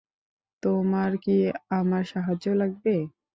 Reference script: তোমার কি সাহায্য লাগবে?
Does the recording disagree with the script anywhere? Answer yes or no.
yes